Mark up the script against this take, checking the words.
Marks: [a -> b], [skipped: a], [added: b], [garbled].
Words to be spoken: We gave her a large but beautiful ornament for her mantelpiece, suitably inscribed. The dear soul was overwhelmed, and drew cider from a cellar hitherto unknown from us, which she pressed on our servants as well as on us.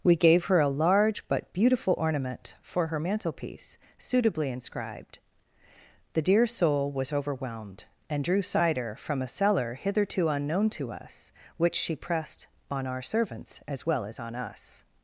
We gave her a large but beautiful ornament for her mantelpiece, suitably inscribed. The dear soul was overwhelmed, and drew cider from a cellar hitherto unknown [from -> to] us, which she pressed on our servants as well as on us.